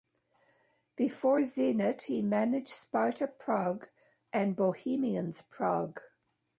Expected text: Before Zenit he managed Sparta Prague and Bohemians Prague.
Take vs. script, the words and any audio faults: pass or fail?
pass